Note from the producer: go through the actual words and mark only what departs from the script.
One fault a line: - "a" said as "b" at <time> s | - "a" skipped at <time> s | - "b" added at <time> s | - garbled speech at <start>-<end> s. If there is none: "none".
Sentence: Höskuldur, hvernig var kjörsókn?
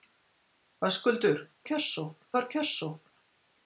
- "hvernig" said as "kjörsókn" at 1.7 s